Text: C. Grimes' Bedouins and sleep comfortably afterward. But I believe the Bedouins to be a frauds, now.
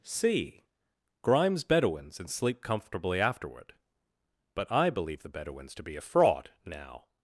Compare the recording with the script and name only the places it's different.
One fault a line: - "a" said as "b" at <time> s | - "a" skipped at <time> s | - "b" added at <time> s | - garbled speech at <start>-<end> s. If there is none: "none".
- "frauds" said as "fraud" at 6.0 s